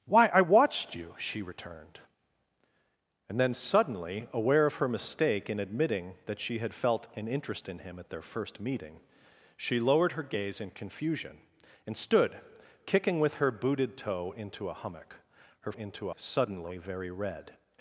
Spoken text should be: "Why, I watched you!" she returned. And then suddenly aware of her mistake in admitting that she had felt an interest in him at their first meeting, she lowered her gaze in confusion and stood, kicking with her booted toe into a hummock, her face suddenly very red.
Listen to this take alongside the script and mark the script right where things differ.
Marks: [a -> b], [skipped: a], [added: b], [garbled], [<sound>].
"Why, I watched you!" she returned. And then suddenly aware of her mistake in admitting that she had felt an interest in him at their first meeting, she lowered her gaze in confusion and stood, kicking with her booted toe into a hummock, her [face -> into] suddenly very red.